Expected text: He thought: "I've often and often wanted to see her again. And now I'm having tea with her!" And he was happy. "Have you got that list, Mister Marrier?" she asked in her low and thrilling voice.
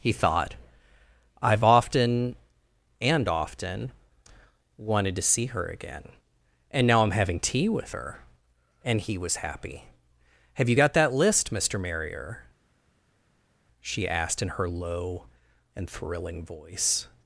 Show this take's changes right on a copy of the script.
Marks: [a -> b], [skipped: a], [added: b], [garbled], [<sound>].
He thought: "I've often and often wanted to see her again. And now I'm having tea with her!" And he was happy. "Have you got that list, Mister Marrier?" she asked in her low and thrilling voice.